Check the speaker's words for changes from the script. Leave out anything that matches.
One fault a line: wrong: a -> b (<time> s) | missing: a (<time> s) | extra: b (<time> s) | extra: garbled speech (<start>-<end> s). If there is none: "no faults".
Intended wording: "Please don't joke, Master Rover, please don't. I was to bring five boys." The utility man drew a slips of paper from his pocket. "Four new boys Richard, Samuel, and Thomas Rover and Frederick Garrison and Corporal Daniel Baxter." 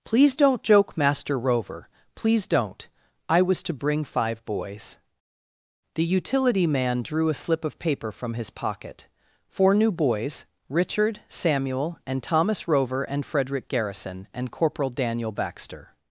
wrong: slips -> slip (7.3 s)